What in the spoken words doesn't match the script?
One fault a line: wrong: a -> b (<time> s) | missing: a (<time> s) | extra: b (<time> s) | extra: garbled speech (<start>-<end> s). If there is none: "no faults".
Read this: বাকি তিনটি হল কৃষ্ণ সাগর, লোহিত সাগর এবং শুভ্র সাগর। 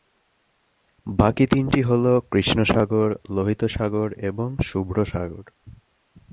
no faults